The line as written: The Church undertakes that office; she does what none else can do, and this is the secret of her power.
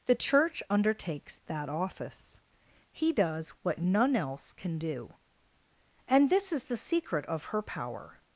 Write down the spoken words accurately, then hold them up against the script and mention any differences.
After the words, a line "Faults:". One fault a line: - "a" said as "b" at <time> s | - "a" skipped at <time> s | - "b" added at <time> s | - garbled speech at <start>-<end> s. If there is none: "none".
The Church undertakes that office; he does what none else can do, and this is the secret of her power.
Faults:
- "she" said as "he" at 2.9 s